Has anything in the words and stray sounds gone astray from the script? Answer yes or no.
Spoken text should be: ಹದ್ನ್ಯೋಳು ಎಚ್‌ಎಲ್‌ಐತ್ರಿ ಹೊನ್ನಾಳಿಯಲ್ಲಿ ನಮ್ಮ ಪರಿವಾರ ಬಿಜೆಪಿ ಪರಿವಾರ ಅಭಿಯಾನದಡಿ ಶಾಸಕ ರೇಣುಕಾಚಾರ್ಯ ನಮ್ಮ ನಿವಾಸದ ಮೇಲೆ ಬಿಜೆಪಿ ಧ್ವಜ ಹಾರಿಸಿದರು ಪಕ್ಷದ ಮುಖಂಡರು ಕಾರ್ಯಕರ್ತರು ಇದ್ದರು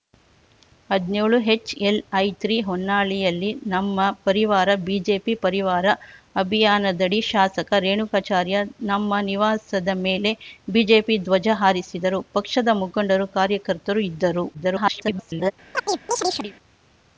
yes